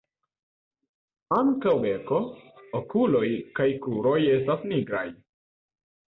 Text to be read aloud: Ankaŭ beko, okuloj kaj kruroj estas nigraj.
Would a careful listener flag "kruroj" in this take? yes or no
no